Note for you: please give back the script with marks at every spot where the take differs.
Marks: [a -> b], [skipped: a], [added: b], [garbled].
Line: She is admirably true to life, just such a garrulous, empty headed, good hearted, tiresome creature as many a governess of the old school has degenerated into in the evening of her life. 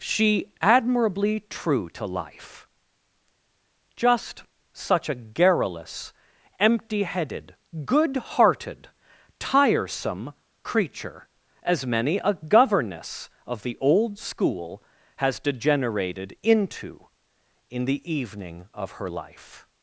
She [skipped: is] admirably true to life, just such a garrulous, empty headed, good hearted, tiresome creature as many a governess of the old school has degenerated into in the evening of her life.